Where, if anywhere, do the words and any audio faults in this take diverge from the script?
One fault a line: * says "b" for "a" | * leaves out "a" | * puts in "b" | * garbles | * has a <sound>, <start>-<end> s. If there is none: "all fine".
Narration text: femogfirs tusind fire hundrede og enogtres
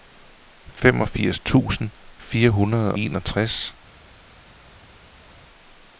* leaves out "og"